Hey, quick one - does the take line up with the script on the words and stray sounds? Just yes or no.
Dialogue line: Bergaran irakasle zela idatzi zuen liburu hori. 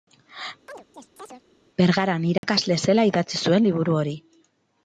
no